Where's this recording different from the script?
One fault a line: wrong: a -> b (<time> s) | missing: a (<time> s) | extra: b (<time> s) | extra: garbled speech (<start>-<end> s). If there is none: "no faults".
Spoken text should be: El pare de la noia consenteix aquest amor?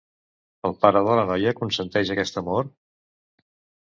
no faults